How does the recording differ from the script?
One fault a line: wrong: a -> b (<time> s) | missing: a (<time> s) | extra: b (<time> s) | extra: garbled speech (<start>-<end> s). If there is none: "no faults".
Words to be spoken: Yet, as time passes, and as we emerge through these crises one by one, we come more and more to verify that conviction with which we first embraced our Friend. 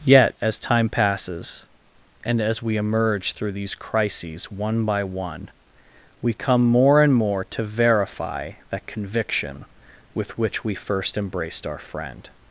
no faults